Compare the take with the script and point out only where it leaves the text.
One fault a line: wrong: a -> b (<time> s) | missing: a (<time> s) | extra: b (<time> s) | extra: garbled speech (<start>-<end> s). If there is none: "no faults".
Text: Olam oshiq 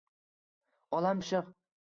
no faults